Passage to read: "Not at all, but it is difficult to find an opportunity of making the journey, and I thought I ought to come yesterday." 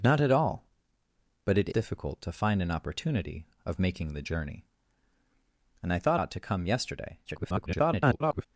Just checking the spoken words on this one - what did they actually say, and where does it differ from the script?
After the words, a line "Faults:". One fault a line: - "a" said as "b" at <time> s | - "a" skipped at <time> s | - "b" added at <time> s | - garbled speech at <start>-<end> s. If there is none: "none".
"Not at all, but it difficult to find an opportunity of making the journey, and I thought ought to come yesterday." [garbled]
Faults:
- "is" skipped at 1.7 s
- "I" skipped at 6.2 s
- garbled speech at 7.3-8.5 s